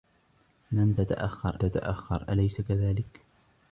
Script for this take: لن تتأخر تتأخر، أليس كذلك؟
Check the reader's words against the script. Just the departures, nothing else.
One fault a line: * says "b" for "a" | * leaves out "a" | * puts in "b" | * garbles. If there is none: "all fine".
all fine